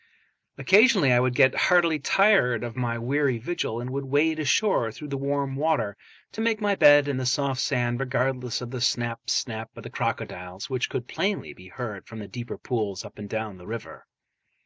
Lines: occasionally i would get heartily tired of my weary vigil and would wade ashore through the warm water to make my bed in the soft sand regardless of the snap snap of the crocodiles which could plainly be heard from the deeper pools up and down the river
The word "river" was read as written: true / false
true